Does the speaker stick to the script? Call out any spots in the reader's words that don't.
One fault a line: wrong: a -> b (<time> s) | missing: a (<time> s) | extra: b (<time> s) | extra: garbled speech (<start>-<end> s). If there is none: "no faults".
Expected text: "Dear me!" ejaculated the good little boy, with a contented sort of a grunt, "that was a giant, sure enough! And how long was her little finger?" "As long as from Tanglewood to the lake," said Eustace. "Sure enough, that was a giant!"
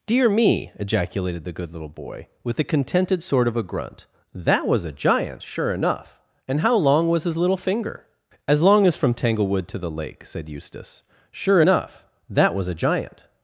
wrong: her -> his (7.2 s)